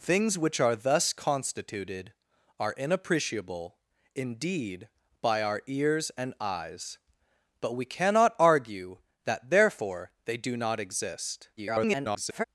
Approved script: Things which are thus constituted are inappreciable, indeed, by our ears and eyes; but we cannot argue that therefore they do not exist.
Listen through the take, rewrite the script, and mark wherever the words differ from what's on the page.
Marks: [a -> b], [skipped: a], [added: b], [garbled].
Things which are thus constituted are inappreciable, indeed, by our ears and eyes; but we cannot argue that therefore they do not exist. [garbled]